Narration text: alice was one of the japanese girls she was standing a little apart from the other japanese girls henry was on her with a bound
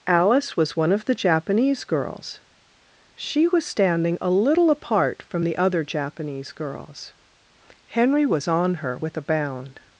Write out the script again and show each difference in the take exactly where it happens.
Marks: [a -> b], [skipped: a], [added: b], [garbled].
alice was one of the japanese girls she was standing a little apart from the other japanese girls henry was on her with a bound